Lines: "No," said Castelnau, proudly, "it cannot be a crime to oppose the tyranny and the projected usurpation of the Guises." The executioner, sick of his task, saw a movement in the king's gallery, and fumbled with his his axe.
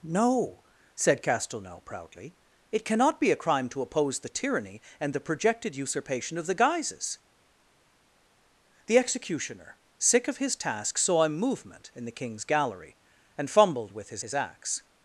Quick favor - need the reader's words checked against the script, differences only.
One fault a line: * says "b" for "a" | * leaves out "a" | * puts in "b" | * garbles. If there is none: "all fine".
all fine